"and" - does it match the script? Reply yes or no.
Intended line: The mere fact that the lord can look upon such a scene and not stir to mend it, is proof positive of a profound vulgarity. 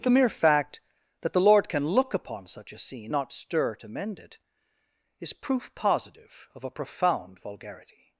no